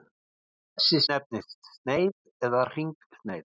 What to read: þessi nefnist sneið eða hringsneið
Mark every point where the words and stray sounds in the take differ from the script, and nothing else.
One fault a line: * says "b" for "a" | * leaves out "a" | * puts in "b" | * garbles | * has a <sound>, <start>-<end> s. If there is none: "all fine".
all fine